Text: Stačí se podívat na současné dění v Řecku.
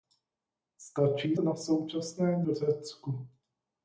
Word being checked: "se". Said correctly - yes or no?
no